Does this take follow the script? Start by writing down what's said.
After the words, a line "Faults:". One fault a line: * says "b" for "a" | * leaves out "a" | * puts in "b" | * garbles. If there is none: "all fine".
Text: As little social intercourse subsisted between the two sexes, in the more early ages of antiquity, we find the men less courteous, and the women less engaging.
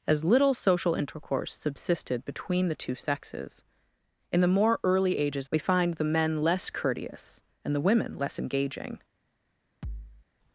As little social intercourse subsisted between the two sexes, in the more early ages we find the men less courteous, and the women less engaging.
Faults:
* leaves out "of antiquity"